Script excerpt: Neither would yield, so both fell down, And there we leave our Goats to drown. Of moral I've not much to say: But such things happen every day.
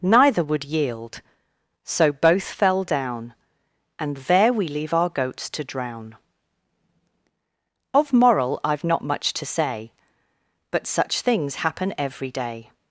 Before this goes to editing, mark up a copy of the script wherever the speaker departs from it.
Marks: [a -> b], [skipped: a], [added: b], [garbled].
Neither would yield, so both fell down, And there we leave our Goats to drown. Of moral I've not much to say: But such things happen every day.